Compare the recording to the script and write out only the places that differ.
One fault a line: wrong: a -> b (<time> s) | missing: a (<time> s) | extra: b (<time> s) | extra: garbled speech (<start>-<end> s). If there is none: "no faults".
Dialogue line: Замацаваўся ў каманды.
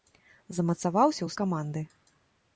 no faults